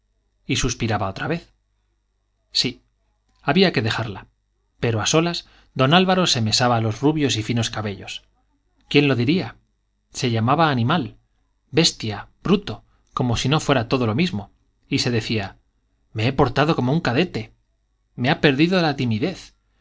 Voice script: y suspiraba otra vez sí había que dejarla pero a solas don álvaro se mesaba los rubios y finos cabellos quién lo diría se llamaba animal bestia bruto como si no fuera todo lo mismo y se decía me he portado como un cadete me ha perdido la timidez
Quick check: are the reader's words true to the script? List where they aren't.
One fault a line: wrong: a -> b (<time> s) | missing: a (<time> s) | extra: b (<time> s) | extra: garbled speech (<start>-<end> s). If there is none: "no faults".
no faults